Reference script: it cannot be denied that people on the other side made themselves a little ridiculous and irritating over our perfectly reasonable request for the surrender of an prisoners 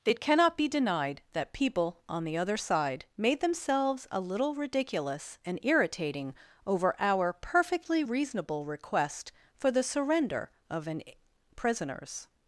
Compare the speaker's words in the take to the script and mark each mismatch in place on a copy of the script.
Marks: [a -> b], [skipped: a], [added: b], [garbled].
it cannot be denied that people on the other side made themselves a little ridiculous and irritating over our perfectly reasonable request for the surrender of an prisoners